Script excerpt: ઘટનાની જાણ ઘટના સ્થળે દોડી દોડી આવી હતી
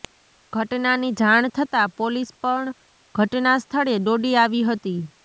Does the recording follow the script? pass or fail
fail